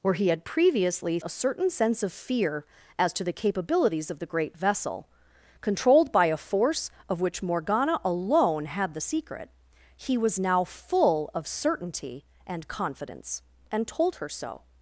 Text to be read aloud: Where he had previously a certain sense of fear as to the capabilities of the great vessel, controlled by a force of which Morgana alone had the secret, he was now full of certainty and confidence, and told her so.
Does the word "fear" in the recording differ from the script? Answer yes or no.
no